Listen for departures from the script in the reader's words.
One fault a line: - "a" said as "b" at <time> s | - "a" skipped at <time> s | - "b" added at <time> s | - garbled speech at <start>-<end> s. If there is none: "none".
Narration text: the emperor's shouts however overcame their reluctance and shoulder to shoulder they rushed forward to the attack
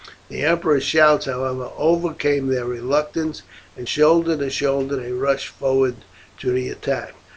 none